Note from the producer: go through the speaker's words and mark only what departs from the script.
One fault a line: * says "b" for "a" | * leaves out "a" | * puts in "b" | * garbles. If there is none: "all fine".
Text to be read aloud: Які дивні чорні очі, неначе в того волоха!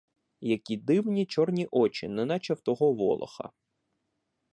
all fine